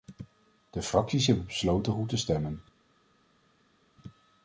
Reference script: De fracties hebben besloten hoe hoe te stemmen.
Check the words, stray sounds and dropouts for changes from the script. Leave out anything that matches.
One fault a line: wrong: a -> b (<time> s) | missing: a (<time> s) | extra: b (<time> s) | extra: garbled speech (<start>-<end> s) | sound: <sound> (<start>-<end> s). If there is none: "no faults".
missing: hoe (2.1 s)